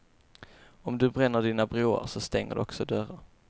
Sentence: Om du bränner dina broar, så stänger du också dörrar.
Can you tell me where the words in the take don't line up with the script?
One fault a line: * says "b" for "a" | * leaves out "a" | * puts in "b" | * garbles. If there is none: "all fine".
all fine